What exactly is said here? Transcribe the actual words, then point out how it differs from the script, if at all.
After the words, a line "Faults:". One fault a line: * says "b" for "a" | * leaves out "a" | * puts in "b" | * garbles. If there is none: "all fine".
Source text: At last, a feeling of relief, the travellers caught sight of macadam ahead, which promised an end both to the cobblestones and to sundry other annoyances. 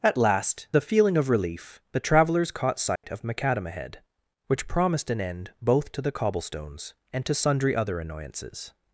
At last, a feeling of relief, the travellers caught sight of macadam ahead, which promised an end both to the cobblestones and to sundry other annoyances.
Faults:
all fine